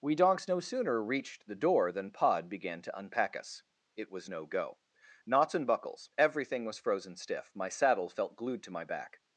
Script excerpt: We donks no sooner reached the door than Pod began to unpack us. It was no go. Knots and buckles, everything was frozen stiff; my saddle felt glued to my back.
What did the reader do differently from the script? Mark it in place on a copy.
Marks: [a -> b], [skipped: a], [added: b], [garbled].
We donks no sooner reached the door than Pod began to unpack us. It was no go. Knots and buckles, everything was frozen stiff; my saddle felt glued to my back.